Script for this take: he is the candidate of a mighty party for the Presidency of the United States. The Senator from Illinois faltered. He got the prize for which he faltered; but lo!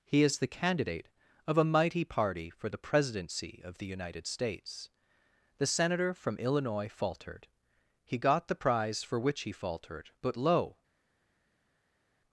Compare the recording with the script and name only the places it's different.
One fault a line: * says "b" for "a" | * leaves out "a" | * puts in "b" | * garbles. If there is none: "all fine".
all fine